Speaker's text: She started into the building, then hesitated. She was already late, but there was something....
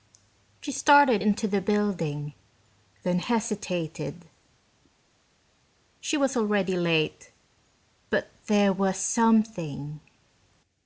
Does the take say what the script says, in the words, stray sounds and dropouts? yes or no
yes